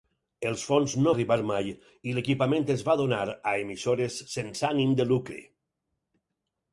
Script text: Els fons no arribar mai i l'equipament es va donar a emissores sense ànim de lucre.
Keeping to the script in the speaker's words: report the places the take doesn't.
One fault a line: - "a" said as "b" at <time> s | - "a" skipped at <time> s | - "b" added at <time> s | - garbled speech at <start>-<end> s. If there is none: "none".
none